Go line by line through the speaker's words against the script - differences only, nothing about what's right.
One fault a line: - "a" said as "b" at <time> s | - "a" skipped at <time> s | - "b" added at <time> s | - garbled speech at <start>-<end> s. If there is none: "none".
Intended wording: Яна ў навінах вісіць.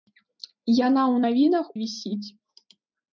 none